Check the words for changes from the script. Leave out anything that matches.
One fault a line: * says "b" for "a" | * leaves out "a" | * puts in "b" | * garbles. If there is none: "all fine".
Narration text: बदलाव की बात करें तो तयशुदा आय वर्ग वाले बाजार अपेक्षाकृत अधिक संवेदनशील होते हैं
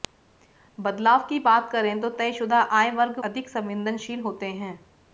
* leaves out "वाले बाजार अपेक्षाकृत"